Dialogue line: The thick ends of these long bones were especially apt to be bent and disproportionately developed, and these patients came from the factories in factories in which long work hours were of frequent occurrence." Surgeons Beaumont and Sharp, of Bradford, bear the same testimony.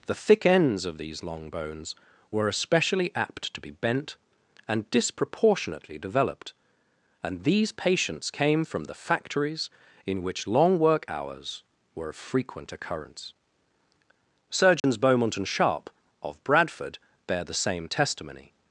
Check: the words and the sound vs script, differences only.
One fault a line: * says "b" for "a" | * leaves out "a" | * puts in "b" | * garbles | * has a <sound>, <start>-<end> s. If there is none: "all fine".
* leaves out "factories in"
* has a dropout, 14.8-14.8 s